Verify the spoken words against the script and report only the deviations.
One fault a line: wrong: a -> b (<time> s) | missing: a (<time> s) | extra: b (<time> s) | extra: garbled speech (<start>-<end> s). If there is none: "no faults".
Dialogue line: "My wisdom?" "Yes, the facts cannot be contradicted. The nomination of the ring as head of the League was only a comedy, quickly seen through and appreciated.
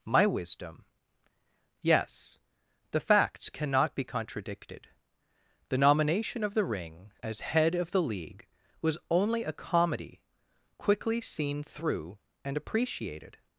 no faults